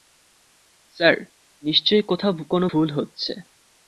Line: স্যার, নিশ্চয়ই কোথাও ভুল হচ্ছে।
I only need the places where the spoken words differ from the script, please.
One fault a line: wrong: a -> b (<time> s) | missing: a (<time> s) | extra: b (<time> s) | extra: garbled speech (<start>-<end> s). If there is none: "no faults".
extra: কোনো (2.5 s)